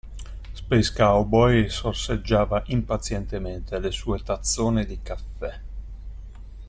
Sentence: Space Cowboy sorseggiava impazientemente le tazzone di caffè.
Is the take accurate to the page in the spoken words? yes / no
no